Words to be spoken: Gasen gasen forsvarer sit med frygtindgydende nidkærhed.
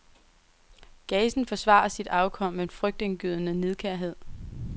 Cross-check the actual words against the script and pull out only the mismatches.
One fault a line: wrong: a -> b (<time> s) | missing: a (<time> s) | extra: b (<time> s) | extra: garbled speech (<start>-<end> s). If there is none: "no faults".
missing: gasen (1.4 s)
extra: afkom (2.1 s)